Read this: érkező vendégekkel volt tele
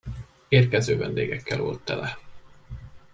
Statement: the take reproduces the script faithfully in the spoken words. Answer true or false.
true